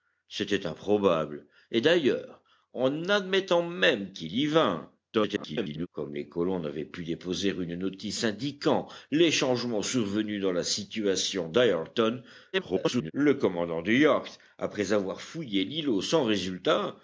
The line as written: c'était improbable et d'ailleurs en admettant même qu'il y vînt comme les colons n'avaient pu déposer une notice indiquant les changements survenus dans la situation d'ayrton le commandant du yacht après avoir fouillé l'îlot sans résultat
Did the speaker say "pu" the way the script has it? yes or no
yes